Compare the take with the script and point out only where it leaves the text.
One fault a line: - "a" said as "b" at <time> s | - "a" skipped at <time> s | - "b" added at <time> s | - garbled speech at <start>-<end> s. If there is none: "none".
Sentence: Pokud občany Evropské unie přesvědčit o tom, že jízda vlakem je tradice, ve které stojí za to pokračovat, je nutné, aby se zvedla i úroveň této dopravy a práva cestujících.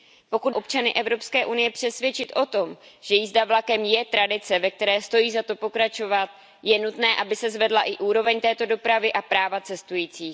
none